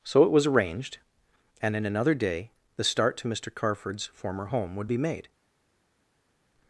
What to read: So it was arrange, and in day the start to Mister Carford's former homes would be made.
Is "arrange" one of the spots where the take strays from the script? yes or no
yes